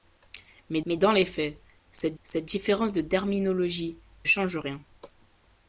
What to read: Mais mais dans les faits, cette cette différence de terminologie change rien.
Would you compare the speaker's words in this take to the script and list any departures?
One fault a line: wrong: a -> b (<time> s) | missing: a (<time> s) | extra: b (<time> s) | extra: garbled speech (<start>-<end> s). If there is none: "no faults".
no faults